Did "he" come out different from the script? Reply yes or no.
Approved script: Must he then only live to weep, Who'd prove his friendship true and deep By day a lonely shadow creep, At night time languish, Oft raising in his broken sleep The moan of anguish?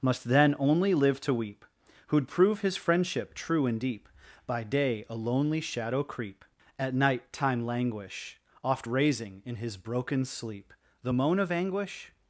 yes